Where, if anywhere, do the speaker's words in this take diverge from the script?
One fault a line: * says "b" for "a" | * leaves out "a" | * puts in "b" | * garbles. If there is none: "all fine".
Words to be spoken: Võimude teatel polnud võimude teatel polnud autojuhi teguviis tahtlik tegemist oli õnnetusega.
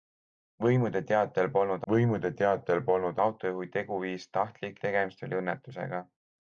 all fine